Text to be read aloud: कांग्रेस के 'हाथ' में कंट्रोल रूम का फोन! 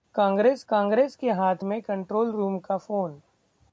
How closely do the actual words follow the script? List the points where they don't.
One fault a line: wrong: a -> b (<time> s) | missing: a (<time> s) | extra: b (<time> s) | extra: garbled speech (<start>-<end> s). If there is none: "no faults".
extra: कांग्रेस (0.7 s)